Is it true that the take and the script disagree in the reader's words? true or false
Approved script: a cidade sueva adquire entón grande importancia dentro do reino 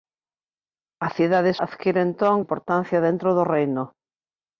true